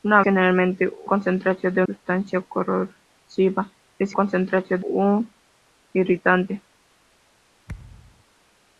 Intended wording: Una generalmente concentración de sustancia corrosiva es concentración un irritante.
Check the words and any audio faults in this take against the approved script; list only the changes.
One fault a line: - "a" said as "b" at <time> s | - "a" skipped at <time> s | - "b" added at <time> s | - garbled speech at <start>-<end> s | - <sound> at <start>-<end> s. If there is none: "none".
- thud at 7.7-8.2 s